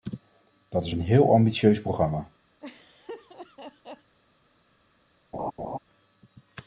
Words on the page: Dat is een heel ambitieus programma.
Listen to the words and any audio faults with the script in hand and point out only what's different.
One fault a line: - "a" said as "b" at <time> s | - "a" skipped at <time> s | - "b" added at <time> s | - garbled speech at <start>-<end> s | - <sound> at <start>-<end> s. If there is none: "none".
- laugh at 2.6-4.2 s
- laugh at 5.3-5.8 s